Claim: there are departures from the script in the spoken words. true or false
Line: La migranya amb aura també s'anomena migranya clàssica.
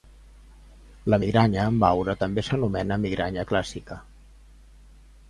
false